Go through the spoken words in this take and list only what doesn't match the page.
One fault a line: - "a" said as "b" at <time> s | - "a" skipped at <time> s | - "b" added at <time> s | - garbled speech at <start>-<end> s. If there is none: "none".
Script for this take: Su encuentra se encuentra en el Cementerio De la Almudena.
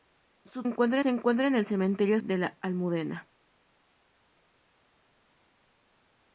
none